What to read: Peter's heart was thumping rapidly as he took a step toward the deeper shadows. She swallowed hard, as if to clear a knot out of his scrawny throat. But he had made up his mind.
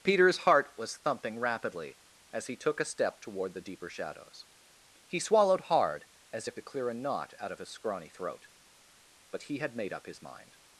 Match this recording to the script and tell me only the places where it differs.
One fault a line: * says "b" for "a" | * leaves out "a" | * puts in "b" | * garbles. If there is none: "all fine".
* says "He" for "She"